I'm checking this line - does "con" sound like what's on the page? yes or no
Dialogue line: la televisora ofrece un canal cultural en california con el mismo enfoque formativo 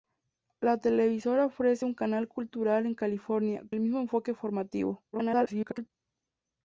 no